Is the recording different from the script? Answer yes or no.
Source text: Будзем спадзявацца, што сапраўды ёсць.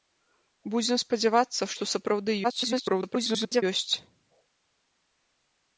yes